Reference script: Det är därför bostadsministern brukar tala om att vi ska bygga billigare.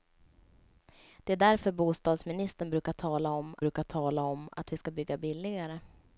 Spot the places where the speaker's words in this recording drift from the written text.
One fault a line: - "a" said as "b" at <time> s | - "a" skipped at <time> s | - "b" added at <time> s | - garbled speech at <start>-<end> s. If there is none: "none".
- "brukar tala om" added at 3.6 s